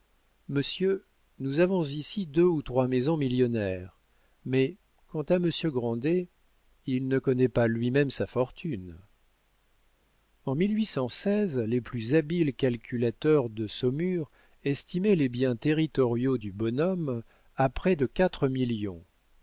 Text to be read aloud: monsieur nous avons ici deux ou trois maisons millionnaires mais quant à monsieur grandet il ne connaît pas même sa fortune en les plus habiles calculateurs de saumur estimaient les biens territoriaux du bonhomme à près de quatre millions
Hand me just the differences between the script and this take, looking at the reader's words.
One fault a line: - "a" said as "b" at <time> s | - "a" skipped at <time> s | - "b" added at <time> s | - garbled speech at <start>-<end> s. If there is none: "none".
- "lui" added at 7.7 s